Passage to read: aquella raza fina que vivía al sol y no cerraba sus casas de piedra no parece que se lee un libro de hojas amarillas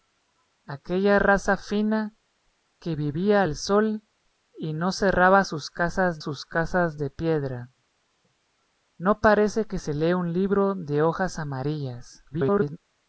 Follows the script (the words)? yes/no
no